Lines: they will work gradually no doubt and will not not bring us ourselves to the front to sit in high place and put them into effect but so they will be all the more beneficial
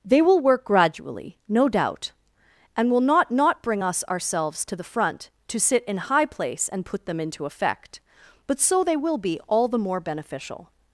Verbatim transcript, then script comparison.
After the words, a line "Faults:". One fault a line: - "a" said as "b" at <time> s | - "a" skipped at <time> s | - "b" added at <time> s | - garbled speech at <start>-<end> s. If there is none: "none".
they will work gradually no doubt and will not not bring us ourselves to the front to sit in high place and put them into effect but so they will be all the more beneficial
Faults:
none